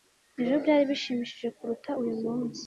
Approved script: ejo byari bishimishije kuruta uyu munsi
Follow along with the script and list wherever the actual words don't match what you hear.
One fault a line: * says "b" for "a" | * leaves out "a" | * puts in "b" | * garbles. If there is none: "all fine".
all fine